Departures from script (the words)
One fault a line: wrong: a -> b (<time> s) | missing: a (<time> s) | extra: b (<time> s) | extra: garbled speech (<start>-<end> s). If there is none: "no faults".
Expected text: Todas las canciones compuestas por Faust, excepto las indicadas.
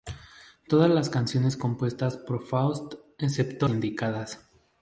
missing: las (3.7 s)